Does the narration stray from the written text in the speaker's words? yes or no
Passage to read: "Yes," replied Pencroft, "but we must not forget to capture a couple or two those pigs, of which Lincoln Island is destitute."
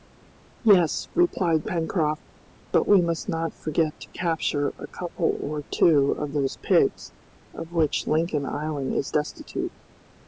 yes